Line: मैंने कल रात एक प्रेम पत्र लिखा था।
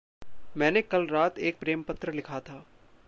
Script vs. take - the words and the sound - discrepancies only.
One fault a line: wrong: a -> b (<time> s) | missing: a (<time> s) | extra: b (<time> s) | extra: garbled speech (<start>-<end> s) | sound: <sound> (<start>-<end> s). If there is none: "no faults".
no faults